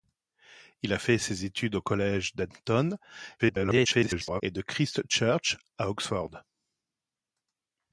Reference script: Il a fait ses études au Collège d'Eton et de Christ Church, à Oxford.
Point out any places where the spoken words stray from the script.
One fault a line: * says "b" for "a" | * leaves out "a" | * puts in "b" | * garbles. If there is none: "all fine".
* garbles